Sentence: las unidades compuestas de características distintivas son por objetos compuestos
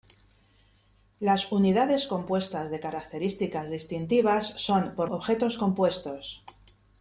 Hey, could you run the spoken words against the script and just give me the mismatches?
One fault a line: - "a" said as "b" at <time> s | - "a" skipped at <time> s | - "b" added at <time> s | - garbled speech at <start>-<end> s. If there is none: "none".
none